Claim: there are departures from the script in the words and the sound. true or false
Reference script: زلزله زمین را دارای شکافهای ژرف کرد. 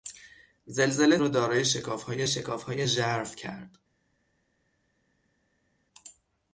true